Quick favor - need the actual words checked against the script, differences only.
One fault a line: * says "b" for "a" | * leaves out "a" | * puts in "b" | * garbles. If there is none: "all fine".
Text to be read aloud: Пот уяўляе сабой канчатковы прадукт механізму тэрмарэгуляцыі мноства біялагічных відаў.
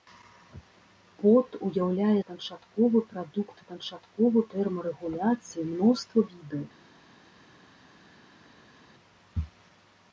* leaves out "сабой"
* says "канчатковы" for "механізму"
* leaves out "біялагічных"